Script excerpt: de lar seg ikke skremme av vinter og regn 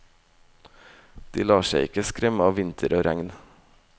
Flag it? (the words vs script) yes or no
no